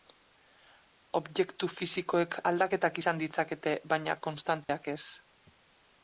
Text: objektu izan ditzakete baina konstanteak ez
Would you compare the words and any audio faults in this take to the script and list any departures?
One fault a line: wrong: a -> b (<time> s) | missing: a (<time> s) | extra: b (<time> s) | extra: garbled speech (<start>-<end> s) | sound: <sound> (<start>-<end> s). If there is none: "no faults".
extra: fisikoek aldaketak (1.7 s)
sound: dropout (4.6-4.7 s)